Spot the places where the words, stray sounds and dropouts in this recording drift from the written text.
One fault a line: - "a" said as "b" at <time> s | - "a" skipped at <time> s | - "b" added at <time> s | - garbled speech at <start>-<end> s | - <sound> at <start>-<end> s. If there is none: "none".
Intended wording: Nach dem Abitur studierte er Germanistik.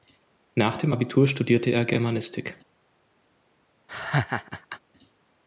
- laugh at 3.9-4.8 s